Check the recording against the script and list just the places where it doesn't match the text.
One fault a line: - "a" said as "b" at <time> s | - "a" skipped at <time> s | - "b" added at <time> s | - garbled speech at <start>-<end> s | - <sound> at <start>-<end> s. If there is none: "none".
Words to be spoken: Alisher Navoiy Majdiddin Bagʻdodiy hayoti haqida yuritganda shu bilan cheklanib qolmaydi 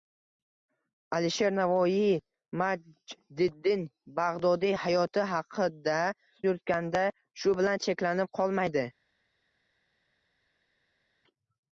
none